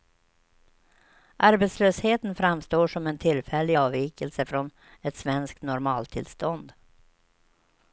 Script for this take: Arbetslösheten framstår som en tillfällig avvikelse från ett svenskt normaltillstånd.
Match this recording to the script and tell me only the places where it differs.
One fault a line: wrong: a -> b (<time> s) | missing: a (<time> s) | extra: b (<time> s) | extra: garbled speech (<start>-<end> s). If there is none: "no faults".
no faults